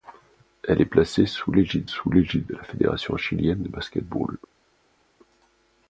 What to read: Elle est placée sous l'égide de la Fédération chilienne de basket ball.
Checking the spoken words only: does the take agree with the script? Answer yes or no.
no